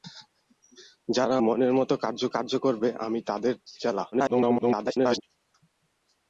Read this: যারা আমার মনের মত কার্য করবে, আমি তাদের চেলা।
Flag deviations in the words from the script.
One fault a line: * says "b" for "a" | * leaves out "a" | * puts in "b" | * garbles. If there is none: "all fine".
* leaves out "আমার"
* puts in "কার্য"
* garbles